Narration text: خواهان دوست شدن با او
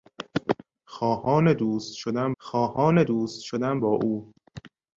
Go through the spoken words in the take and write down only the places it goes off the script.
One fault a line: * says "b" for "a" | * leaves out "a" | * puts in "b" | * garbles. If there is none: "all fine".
* puts in "خواهان دوست شدن"